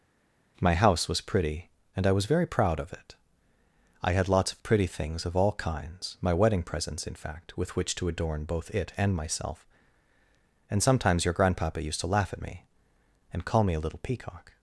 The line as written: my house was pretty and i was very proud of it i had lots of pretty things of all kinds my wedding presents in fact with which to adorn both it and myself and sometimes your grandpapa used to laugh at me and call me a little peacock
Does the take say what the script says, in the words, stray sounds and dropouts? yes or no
yes